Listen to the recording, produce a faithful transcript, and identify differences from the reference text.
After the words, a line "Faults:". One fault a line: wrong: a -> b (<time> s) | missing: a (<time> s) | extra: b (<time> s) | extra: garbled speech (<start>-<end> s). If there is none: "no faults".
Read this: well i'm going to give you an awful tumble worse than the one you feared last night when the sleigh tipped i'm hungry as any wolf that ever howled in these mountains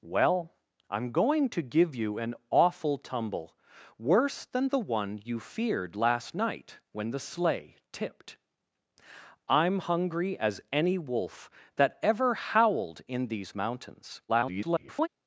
well i'm going to give you an awful tumble worse than the one you feared last night when the sleigh tipped i'm hungry as any wolf that ever howled in these mountains [garbled]
Faults:
extra: garbled speech (14.3-15.1 s)